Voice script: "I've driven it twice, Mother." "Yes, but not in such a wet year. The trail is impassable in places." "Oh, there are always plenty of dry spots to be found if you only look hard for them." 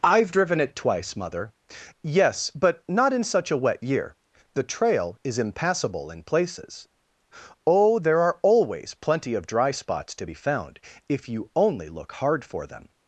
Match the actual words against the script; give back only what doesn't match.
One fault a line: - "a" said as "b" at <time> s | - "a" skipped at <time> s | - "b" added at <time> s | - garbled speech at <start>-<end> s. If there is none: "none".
none